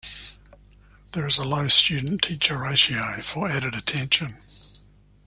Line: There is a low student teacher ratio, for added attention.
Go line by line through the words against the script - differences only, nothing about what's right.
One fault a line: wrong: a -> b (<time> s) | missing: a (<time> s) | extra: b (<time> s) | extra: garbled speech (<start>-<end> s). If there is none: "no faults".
no faults